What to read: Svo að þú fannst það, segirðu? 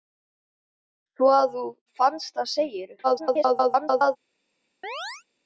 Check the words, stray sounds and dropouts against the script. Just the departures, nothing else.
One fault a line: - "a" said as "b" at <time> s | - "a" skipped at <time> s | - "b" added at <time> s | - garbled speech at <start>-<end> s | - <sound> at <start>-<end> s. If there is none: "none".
- garbled speech at 3.0-4.2 s
- chirp at 4.8-5.2 s